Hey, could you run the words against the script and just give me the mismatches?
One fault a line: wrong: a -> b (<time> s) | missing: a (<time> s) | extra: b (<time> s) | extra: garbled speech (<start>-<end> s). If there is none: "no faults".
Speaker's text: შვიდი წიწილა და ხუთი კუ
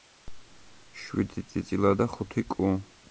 no faults